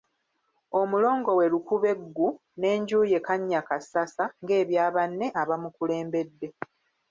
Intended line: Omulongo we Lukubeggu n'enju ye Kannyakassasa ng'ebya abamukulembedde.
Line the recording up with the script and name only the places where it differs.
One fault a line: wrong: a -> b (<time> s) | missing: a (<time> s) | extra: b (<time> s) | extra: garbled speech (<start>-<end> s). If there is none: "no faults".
extra: banne (5.0 s)